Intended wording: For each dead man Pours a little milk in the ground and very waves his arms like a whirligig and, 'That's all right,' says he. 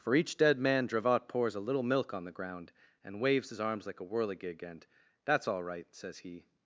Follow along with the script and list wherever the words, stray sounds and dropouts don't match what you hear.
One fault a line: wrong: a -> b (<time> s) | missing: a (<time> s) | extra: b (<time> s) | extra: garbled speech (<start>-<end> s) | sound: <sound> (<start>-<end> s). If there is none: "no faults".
extra: Dravot (0.9 s)
wrong: in -> on (2.1 s)
missing: very (3.2 s)